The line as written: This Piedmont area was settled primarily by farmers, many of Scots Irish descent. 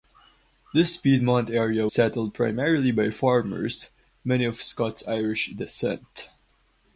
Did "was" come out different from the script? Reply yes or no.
yes